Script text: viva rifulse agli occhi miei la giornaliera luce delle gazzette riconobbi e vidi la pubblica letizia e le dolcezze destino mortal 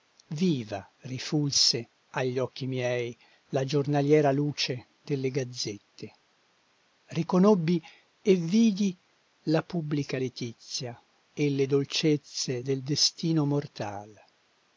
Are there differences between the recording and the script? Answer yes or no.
yes